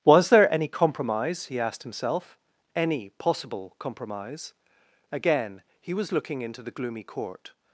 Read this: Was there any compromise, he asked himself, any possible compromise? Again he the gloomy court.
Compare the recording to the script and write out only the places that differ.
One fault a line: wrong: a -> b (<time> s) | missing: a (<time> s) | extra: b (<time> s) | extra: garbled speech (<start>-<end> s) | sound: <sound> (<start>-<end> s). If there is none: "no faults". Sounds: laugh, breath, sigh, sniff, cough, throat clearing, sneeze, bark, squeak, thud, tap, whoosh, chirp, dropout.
extra: was looking into (5.9 s)